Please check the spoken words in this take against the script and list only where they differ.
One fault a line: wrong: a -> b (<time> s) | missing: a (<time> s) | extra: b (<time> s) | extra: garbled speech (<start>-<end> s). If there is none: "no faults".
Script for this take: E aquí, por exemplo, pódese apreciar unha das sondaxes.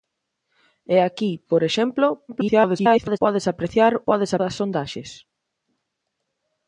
extra: garbled speech (2.3-3.2 s)
wrong: unha -> pódese (4.1 s)